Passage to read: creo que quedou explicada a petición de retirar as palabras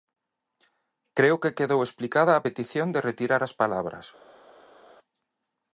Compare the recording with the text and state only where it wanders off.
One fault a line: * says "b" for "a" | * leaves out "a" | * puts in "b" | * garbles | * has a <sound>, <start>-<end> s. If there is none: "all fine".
all fine